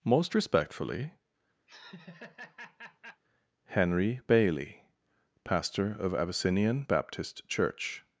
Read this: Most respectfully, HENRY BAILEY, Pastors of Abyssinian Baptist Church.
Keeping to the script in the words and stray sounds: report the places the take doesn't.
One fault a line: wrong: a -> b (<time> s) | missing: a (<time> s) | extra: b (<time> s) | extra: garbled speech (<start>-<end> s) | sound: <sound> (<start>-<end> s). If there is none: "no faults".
sound: laugh (1.7-3.2 s)
wrong: Pastors -> Pastor (5.4 s)